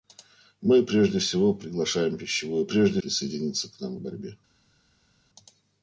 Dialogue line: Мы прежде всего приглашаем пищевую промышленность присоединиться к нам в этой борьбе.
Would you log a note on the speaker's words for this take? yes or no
yes